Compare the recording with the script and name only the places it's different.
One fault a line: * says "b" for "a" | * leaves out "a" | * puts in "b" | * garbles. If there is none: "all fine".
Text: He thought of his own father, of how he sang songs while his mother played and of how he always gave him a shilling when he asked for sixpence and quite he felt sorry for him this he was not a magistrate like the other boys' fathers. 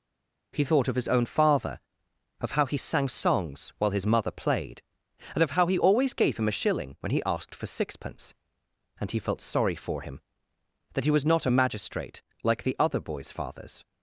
* leaves out "quite"
* says "that" for "this"